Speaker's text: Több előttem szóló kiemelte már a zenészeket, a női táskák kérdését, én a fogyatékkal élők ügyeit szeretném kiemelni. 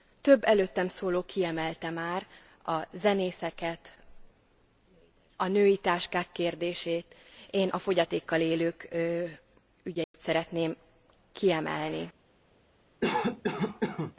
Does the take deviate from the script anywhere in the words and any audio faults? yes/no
yes